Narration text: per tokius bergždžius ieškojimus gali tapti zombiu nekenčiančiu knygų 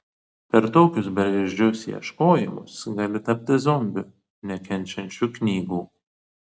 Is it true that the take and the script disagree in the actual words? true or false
false